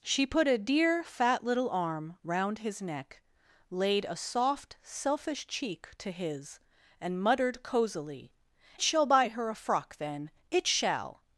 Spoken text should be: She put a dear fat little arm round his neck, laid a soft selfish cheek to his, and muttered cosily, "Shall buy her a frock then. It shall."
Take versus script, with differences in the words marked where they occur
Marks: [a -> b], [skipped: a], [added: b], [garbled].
She put a dear fat little arm round his neck, laid a soft selfish cheek to his, and muttered cosily, "Shall buy her a frock then. It shall."